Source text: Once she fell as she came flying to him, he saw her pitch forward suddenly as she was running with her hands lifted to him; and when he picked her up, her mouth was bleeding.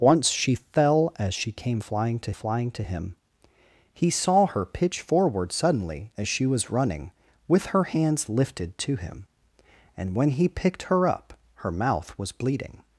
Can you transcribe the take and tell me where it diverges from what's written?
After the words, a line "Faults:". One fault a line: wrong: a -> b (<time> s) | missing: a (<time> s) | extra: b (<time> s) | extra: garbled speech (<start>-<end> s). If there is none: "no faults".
Once she fell as she came flying to flying to him, he saw her pitch forward suddenly as she was running with her hands lifted to him; and when he picked her up, her mouth was bleeding.
Faults:
extra: flying to (2.3 s)